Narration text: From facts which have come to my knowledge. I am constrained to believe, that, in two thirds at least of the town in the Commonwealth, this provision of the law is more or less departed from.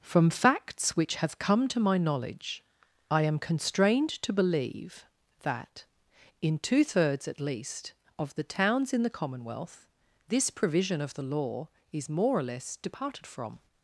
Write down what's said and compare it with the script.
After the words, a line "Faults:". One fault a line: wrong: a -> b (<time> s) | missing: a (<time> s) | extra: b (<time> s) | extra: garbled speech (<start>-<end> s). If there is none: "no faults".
From facts which have come to my knowledge. I am constrained to believe, that, in two thirds at least of the towns in the Commonwealth, this provision of the law is more or less departed from.
Faults:
wrong: town -> towns (8.4 s)